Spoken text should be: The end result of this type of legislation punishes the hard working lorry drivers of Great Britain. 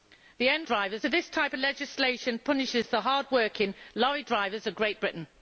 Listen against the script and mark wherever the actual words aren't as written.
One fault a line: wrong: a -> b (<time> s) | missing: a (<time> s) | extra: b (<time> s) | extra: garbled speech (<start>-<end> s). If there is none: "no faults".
wrong: result -> drivers (0.6 s)